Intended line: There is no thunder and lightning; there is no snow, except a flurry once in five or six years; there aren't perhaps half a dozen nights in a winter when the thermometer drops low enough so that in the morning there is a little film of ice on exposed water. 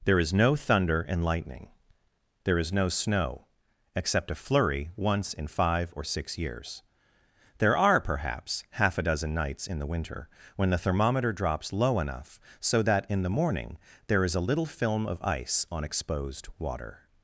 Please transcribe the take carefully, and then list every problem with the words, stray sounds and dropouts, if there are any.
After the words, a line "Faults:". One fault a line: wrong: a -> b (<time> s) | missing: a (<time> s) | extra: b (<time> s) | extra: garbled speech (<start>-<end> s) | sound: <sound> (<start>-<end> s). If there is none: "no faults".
There is no thunder and lightning; there is no snow, except a flurry once in five or six years; there are perhaps half a dozen nights in the winter when the thermometer drops low enough so that in the morning there is a little film of ice on exposed water.
Faults:
wrong: aren't -> are (7.8 s)
wrong: a -> the (9.8 s)